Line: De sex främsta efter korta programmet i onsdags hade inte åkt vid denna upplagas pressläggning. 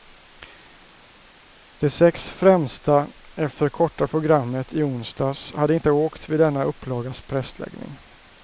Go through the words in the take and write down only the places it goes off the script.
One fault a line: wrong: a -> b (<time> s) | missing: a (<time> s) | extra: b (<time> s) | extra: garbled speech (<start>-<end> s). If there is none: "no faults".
no faults